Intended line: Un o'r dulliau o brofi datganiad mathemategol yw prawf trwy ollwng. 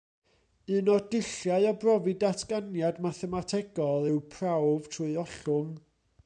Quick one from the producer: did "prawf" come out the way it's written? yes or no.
yes